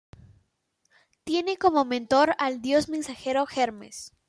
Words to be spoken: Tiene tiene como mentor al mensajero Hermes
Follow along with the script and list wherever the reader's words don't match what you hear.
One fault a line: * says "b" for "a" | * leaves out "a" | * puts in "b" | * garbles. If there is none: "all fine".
* leaves out "tiene"
* puts in "dios"